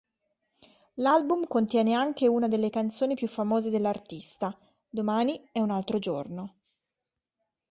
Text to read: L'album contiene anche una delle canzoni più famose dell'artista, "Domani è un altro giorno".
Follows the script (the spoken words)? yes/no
yes